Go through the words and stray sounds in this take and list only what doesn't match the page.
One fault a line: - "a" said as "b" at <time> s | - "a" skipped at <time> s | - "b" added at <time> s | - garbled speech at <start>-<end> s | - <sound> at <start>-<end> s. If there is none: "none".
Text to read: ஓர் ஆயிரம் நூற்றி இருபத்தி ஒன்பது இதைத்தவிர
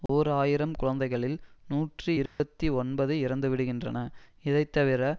- dropout at 0.1-0.1 s
- "குழந்தைகளில்" added at 0.8 s
- dropout at 2.3-2.4 s
- "இறந்துவிடுகின்றன" added at 3.2 s